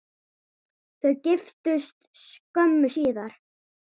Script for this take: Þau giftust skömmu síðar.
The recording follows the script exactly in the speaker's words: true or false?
true